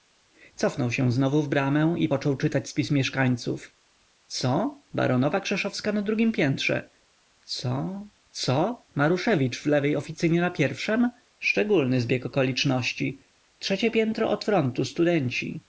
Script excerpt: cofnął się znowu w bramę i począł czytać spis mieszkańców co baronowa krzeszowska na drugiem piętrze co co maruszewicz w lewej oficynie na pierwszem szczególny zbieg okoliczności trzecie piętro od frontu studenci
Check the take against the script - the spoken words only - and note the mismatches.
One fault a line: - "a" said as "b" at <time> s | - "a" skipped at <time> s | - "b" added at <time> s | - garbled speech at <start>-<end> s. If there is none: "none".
none